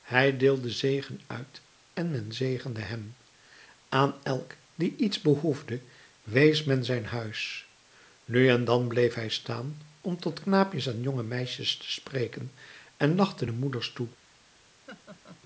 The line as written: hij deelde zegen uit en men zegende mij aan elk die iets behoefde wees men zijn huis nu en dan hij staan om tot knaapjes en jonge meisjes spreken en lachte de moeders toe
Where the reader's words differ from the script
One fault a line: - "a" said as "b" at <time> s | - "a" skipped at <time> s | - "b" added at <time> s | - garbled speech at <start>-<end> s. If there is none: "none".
- "mij" said as "hem" at 2.8 s
- "bleef" added at 8.9 s
- "te" added at 11.8 s